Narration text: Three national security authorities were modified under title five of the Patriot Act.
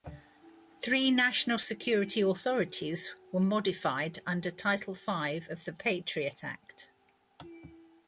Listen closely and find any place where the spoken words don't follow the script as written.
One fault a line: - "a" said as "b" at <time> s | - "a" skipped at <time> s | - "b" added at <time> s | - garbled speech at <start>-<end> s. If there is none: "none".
none